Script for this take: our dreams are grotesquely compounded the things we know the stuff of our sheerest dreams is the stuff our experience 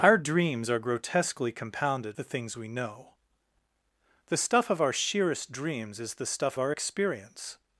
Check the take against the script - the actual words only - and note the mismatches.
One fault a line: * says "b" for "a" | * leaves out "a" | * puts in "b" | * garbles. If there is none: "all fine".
all fine